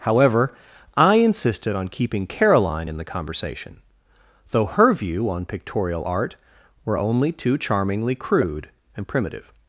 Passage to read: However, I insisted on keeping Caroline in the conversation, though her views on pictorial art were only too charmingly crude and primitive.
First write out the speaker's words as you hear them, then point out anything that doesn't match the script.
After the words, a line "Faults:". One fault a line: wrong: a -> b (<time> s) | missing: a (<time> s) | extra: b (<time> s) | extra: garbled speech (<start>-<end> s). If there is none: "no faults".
However, I insisted on keeping Caroline in the conversation, though her view on pictorial art were only too charmingly crude and primitive.
Faults:
wrong: views -> view (4.9 s)